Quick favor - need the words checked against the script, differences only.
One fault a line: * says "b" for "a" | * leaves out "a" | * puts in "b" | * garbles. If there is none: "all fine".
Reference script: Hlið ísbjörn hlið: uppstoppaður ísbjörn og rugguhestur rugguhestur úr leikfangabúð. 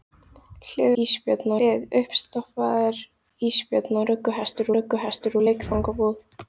all fine